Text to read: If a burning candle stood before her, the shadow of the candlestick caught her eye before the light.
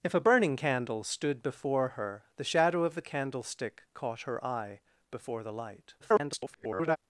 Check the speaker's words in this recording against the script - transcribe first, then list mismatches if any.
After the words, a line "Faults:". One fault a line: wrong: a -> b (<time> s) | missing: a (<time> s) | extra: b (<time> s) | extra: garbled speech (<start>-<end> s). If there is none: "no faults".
If a burning candle stood before her, the shadow of the candlestick caught her eye before the light. [garbled]
Faults:
extra: garbled speech (6.0-7.0 s)